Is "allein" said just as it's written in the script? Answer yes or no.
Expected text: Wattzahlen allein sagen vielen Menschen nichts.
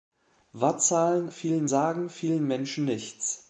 no